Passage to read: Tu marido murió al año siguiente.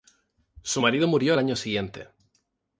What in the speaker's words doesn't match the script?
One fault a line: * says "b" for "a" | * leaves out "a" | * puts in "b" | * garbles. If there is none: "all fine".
* says "Su" for "Tu"